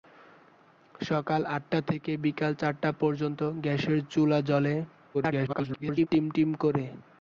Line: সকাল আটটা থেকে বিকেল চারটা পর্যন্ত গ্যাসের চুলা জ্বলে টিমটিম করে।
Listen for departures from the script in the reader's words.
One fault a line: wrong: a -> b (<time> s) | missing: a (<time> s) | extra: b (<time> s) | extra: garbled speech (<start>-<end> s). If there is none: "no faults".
extra: garbled speech (5.1-6.1 s)